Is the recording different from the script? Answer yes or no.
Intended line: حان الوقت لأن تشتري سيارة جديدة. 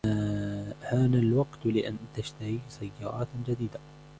no